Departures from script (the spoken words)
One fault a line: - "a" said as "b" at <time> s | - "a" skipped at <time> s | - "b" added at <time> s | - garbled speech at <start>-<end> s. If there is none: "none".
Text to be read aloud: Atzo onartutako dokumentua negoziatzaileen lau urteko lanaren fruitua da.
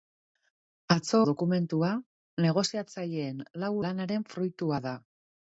- "onartutako" skipped at 1.2 s
- "urteko" skipped at 3.7 s